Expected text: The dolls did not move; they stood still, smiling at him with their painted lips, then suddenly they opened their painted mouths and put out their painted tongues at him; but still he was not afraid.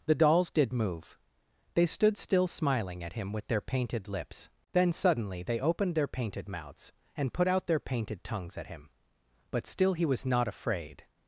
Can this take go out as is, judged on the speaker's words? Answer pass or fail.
fail